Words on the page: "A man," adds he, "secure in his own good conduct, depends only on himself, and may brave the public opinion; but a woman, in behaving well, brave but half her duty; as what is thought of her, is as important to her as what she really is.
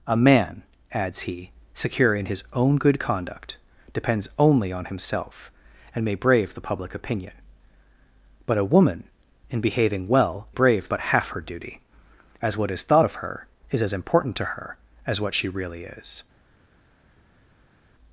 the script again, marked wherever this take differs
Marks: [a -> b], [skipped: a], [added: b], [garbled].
"A man," adds he, "secure in his own good conduct, depends only on himself, and may brave the public opinion; but a woman, in behaving well, brave but half her duty; as what is thought of her, is as important to her as what she really is.